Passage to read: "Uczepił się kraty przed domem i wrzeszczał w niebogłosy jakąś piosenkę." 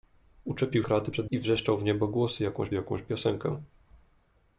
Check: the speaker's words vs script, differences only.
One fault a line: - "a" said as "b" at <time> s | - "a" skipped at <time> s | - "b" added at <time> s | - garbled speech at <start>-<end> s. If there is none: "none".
- "się" skipped at 0.8 s
- "domem" skipped at 1.3 s
- "jakąś" added at 2.7 s